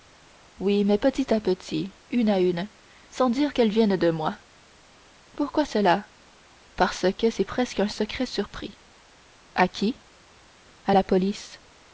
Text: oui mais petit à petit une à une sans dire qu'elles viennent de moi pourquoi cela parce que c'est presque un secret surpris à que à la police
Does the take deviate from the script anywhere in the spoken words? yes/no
yes